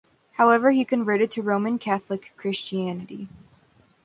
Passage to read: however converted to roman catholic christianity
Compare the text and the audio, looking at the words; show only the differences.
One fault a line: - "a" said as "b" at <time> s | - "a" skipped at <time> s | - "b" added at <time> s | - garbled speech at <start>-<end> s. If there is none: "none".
- "he" added at 0.7 s